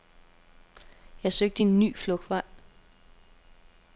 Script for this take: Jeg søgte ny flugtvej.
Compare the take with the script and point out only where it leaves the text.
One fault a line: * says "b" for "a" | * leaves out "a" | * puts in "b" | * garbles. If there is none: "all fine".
* puts in "en"